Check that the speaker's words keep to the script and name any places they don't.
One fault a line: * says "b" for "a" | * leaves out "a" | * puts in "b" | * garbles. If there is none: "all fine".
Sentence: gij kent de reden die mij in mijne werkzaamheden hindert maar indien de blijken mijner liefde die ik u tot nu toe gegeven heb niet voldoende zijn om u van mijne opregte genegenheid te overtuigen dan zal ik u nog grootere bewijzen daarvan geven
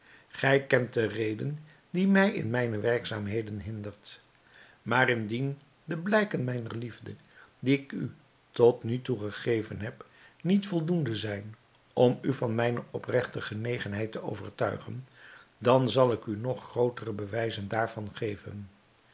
all fine